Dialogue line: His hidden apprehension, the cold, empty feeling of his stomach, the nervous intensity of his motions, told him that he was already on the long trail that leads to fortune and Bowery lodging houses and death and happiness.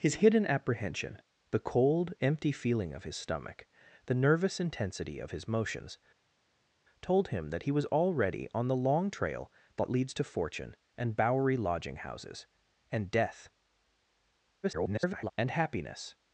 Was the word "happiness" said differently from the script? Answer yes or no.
no